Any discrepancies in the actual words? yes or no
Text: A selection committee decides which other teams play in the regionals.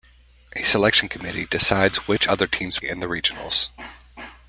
yes